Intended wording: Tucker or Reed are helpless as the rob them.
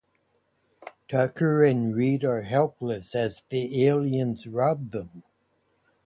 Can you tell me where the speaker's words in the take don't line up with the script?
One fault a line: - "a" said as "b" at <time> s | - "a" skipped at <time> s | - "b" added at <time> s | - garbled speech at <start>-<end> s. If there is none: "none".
- "or" said as "and" at 1.6 s
- "aliens" added at 3.8 s